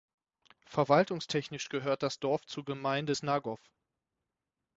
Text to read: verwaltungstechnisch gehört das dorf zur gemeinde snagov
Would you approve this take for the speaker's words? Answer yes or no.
yes